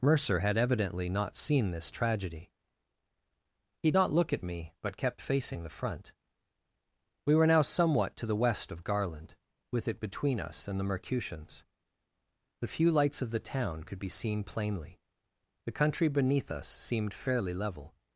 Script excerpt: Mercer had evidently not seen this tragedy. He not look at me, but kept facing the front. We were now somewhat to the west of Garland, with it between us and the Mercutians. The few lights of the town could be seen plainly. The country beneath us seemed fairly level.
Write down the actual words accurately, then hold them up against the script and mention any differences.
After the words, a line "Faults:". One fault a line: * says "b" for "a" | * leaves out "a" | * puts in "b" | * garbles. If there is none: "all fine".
Mercer had evidently not seen this tragedy. He not look at me, but kept facing the front. We were now somewhat to the west of Garland, with it between us and the Mercutians. The few lights of the town could be seen plainly. The country beneath us seemed fairly level.
Faults:
all fine